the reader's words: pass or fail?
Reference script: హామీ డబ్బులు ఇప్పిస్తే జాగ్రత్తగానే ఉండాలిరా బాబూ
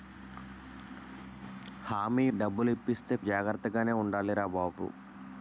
pass